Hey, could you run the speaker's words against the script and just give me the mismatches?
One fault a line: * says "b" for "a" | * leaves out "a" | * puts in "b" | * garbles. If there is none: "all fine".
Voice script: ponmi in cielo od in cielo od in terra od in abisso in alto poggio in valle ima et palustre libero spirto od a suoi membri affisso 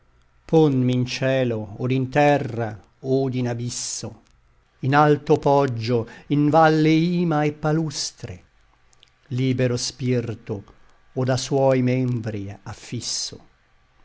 * leaves out "cielo od in"